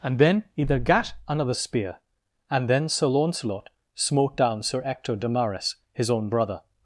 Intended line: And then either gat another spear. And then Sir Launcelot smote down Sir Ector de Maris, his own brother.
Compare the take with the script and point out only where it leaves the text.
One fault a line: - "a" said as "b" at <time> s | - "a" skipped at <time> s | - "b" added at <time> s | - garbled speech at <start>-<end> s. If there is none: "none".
none